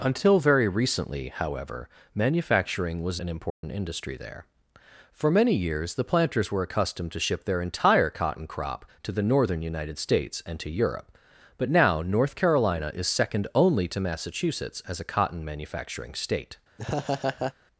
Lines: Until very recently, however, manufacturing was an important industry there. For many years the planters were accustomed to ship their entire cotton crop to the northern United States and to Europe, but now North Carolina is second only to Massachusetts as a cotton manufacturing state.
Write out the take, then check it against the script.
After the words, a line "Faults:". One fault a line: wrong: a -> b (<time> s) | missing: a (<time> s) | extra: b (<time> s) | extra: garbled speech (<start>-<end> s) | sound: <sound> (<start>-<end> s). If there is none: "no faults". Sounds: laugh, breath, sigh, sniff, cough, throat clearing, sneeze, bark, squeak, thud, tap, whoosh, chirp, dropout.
Until very recently, however, manufacturing was an important industry there. For many years the planters were accustomed to ship their entire cotton crop to the northern United States and to Europe, but now North Carolina is second only to Massachusetts as a cotton manufacturing state.
Faults:
sound: dropout (3.5-3.6 s)
sound: laugh (16.8-17.5 s)